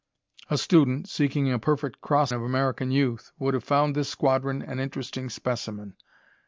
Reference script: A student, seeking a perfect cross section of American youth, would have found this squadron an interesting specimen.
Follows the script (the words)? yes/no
no